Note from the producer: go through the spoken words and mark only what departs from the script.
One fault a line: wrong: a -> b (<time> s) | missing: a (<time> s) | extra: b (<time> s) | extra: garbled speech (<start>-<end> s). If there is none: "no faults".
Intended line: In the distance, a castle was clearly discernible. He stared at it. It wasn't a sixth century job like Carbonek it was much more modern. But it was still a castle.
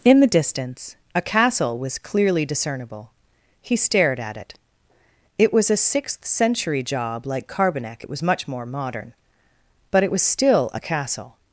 wrong: wasn't -> was (5.5 s)